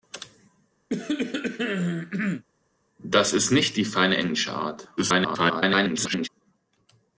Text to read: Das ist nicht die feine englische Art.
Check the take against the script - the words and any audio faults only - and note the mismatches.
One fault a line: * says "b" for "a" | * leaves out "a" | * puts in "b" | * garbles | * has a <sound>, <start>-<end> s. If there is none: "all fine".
* has a cough, 0.9-2.4 s
* garbles